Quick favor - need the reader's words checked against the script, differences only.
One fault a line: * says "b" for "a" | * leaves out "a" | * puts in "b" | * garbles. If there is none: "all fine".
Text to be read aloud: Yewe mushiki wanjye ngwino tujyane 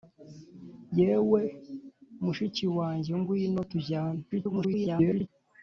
* garbles